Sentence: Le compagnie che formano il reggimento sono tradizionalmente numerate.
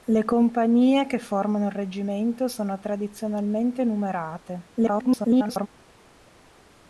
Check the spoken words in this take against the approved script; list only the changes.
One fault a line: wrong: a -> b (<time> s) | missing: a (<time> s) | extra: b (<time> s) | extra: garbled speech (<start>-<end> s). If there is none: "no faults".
extra: garbled speech (4.8-5.7 s)